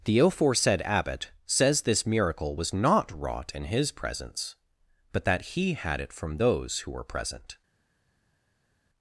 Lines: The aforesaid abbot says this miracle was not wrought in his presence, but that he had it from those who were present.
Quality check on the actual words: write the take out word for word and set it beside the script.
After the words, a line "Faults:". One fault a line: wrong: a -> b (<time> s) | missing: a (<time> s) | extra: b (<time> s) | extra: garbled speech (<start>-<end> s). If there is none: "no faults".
The aforesaid abbot says this miracle was not wrought in his presence, but that he had it from those who were present.
Faults:
no faults